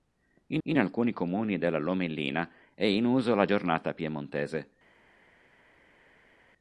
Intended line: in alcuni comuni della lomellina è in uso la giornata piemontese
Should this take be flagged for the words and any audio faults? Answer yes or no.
yes